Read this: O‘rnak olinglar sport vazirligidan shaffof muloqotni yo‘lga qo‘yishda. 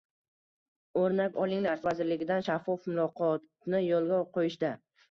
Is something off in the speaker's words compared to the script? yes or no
yes